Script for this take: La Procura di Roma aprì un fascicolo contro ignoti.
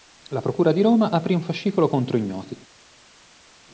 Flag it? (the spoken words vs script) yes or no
no